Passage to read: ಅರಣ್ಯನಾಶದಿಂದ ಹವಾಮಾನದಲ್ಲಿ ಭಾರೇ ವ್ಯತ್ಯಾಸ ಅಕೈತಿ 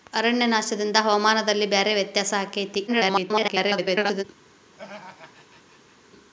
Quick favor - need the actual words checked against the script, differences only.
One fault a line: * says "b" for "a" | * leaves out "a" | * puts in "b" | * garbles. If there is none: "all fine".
* garbles